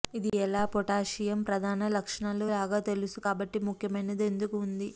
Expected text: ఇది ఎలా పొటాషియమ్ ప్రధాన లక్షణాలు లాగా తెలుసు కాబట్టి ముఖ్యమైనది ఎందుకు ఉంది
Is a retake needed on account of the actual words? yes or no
no